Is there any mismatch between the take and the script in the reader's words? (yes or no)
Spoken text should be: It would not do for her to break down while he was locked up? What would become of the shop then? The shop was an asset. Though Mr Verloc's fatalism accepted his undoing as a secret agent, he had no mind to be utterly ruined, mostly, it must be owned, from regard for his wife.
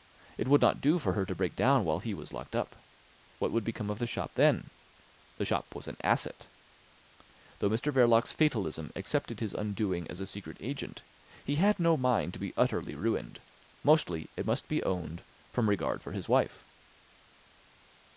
no